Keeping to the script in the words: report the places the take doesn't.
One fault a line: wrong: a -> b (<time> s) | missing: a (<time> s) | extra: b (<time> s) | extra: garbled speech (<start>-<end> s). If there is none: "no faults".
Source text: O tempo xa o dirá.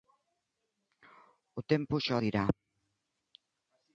no faults